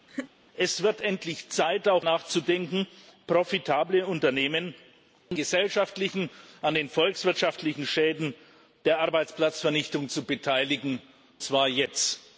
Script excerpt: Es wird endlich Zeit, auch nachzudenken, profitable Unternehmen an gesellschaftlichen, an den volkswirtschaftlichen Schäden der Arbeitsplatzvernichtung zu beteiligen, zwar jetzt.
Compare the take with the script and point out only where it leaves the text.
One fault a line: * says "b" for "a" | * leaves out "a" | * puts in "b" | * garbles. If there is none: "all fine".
all fine